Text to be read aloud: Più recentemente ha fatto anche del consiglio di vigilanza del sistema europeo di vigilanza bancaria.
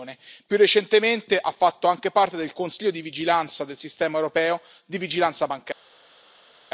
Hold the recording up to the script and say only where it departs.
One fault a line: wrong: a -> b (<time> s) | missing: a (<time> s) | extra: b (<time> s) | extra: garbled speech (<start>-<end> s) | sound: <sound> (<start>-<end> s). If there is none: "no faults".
extra: parte (2.1 s)